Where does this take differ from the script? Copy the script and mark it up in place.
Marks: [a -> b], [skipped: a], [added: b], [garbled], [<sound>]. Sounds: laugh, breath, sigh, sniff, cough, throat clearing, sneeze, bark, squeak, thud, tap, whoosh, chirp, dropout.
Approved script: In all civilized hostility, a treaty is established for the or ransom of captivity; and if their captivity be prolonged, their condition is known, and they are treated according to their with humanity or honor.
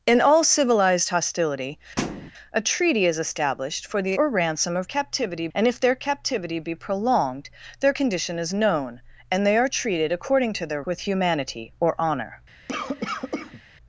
In all civilized hostility, [thud] a treaty is established for the or ransom of captivity; and if their captivity be prolonged, their condition is known, and they are treated according to their with humanity or honor. [cough]